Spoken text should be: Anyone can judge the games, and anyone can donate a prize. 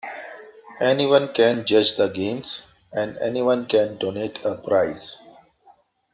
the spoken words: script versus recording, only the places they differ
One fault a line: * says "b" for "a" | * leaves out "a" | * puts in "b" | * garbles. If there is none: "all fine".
all fine